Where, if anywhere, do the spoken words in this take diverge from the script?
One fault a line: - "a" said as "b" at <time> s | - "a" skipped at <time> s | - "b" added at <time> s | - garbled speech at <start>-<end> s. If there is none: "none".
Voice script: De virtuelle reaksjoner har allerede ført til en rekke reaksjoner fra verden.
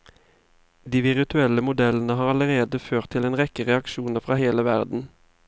- "reaksjoner" said as "modellene" at 1.7 s
- "hele" added at 4.4 s